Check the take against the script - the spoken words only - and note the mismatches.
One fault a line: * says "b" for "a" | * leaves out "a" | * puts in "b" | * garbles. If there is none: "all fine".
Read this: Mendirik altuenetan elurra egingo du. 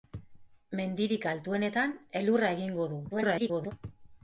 * garbles